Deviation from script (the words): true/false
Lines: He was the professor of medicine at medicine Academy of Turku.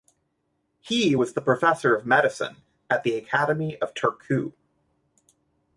true